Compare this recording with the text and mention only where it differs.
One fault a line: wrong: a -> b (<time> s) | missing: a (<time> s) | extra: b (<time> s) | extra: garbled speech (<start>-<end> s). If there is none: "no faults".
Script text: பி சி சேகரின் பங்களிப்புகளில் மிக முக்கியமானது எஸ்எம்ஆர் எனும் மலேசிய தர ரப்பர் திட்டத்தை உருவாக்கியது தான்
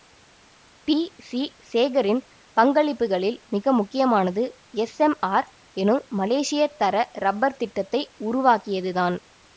no faults